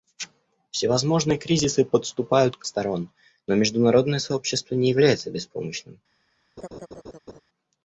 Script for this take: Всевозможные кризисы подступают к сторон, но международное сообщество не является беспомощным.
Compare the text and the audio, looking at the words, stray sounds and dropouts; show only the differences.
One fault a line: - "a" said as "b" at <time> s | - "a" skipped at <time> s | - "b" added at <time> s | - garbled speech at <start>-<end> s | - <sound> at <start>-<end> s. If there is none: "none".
- laugh at 6.6-7.4 s